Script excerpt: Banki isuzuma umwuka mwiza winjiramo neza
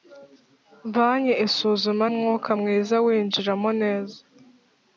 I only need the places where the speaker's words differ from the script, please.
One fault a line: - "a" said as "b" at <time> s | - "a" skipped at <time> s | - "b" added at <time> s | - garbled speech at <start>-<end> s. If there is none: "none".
none